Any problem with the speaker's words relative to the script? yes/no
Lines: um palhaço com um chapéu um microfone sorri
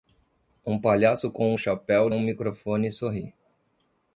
no